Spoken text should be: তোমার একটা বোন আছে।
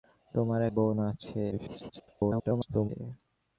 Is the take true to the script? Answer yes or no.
no